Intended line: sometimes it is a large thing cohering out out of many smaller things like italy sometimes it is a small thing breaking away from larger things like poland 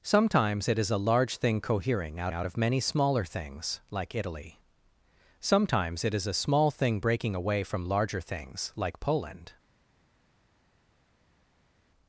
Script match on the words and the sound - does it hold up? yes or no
yes